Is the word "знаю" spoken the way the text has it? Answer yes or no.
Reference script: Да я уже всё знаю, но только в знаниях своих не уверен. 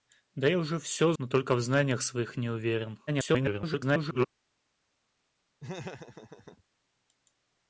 no